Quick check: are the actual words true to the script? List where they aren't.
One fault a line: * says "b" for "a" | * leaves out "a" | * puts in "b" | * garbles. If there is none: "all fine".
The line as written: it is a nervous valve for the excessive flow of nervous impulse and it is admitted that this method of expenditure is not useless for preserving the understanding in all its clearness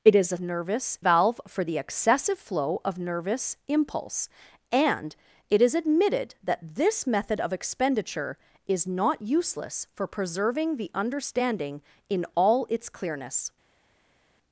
all fine